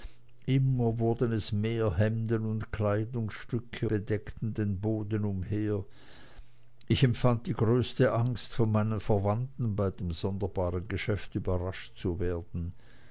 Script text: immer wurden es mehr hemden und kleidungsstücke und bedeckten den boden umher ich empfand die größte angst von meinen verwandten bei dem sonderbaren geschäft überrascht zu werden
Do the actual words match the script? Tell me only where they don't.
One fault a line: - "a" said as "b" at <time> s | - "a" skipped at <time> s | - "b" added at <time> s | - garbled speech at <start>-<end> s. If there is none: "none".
- "und" skipped at 3.9 s